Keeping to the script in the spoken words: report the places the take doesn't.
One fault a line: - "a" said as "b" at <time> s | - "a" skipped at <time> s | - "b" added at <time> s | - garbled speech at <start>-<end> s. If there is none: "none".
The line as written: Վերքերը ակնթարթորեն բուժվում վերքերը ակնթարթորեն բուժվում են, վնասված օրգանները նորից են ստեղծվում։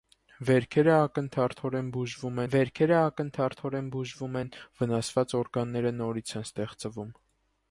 none